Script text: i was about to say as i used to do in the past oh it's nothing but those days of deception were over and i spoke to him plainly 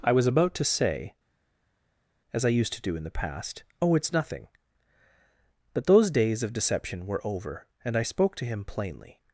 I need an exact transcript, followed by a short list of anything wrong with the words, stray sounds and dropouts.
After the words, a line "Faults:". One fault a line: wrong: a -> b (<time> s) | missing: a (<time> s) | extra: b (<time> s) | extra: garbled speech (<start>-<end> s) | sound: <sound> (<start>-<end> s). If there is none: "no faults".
i was about to say as i used to do in the past oh it's nothing but those days of deception were over and i spoke to him plainly
Faults:
no faults